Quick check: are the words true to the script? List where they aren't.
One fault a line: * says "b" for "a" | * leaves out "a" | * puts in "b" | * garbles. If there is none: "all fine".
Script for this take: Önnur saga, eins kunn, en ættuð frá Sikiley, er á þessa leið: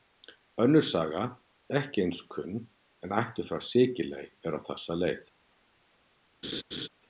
* puts in "ekki"